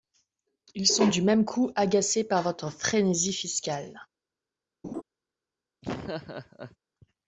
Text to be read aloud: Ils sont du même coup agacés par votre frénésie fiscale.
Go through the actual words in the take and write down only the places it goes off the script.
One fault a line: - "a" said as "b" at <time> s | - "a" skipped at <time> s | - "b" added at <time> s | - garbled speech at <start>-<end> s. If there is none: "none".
none